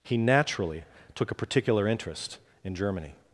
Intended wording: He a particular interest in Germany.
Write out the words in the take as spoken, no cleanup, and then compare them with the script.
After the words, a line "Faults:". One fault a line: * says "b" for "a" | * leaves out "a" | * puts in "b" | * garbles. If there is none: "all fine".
He naturally took a particular interest in Germany.
Faults:
* puts in "naturally took"